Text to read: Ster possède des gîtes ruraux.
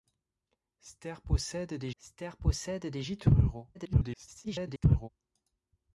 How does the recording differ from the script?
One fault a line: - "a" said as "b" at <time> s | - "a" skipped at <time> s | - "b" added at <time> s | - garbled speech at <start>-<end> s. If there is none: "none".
- "ster possède des" added at 2.0 s
- garbled speech at 3.7-5.1 s